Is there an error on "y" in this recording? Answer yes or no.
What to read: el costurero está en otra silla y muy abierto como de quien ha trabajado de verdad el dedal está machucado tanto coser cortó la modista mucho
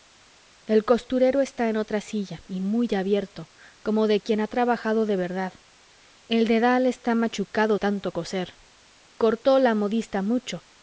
no